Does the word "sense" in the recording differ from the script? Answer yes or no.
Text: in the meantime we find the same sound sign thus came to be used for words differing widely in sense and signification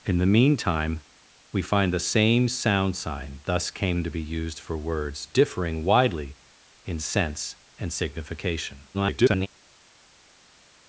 no